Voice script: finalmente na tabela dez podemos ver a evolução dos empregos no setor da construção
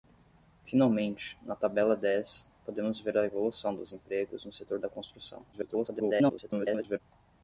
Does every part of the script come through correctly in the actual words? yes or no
no